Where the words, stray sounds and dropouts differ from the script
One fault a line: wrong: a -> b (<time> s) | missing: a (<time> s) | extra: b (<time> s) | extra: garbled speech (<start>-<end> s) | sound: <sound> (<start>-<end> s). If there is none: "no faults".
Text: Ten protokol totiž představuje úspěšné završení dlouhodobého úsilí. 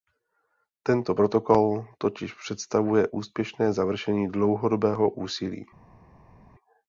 wrong: Ten -> Tento (0.8 s)